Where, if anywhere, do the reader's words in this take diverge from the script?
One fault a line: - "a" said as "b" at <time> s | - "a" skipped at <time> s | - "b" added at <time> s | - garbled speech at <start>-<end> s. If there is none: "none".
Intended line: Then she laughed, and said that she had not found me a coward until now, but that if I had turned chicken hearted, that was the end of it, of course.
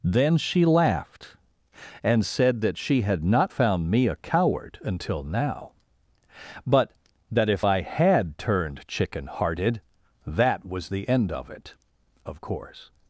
none